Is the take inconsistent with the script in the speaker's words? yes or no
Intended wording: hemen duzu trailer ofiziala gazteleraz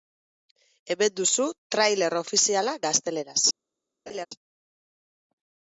no